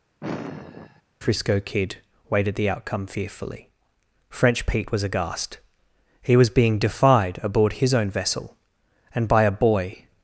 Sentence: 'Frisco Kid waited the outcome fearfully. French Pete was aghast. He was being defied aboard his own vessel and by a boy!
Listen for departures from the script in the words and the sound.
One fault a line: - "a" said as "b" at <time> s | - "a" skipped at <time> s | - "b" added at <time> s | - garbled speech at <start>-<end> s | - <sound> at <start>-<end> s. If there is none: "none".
- sigh at 0.2-1.0 s